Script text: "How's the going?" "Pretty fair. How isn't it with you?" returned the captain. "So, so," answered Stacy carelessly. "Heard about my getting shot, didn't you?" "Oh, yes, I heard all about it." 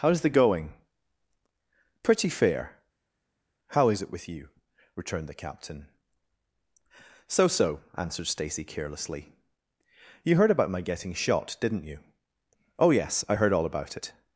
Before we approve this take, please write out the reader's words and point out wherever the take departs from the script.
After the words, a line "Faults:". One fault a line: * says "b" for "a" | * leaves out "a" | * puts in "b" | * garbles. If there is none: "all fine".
"How's the going?" "Pretty fair. How is it with you?" returned the captain. "So, so," answered Stacy carelessly. "You heard about my getting shot, didn't you?" "Oh, yes, I heard all about it."
Faults:
* says "is" for "isn't"
* puts in "You"